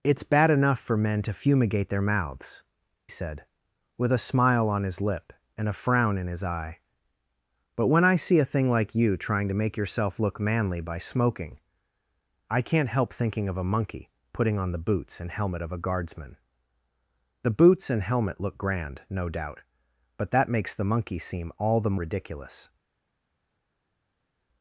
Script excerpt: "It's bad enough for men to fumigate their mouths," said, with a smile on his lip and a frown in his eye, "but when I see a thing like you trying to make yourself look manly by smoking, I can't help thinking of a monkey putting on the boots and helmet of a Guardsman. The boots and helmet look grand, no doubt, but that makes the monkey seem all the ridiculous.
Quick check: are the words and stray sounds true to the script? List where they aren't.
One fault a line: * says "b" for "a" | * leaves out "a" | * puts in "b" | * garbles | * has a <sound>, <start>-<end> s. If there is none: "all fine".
all fine